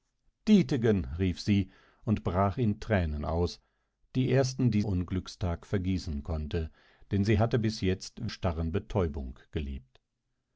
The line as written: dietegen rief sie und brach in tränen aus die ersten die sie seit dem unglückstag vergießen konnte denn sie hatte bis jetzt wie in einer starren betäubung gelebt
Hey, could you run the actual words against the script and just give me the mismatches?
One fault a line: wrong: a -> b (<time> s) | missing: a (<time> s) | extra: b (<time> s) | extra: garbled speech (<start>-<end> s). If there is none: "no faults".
missing: sie seit dem (4.8 s)
missing: wie in einer (8.3 s)